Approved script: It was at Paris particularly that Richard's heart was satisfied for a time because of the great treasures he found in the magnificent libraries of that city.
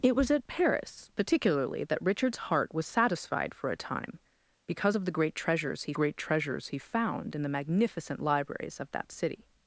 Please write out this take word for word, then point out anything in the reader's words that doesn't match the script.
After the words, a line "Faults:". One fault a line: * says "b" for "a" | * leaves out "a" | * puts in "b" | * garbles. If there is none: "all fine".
It was at Paris particularly that Richard's heart was satisfied for a time because of the great treasures he great treasures he found in the magnificent libraries of that city.
Faults:
* puts in "great treasures he"